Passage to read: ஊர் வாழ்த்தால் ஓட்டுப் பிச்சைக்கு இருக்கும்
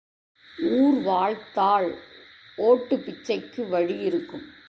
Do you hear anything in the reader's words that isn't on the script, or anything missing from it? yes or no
yes